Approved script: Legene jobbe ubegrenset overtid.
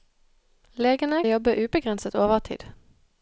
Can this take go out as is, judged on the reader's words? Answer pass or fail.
pass